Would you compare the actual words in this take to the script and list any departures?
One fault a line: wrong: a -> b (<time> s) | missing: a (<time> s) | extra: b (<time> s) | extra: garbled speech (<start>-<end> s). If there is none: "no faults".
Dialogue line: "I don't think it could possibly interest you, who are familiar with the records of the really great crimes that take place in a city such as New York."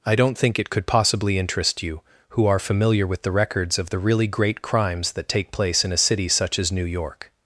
no faults